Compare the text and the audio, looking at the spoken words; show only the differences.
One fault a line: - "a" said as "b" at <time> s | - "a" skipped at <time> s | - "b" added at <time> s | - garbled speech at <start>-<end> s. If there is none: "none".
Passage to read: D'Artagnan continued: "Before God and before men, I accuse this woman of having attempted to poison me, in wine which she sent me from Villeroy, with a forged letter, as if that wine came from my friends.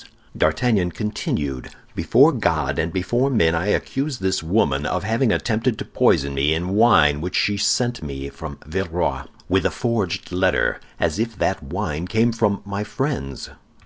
none